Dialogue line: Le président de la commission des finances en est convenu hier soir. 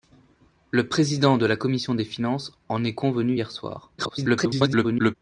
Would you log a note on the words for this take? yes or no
yes